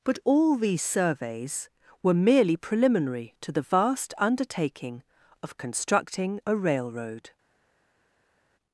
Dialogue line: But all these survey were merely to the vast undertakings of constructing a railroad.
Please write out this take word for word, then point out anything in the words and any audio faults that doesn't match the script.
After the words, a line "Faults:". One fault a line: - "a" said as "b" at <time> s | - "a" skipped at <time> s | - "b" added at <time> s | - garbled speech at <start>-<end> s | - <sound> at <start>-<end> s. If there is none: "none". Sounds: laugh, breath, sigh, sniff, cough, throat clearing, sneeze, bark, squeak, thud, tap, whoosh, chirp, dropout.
But all these surveys were merely preliminary to the vast undertaking of constructing a railroad.
Faults:
- "survey" said as "surveys" at 0.8 s
- "preliminary" added at 2.6 s
- "undertakings" said as "undertaking" at 4.2 s